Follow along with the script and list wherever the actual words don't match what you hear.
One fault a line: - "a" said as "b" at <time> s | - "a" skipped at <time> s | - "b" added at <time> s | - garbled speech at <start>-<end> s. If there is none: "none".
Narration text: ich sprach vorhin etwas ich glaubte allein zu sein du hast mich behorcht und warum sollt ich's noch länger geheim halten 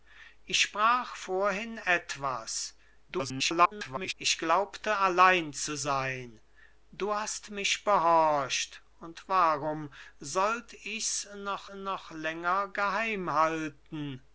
- garbled speech at 3.1-4.1 s
- "noch" added at 11.7 s